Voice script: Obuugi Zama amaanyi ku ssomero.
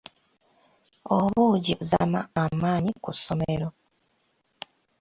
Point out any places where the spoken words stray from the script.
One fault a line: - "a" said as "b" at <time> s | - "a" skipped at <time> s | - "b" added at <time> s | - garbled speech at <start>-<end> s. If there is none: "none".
none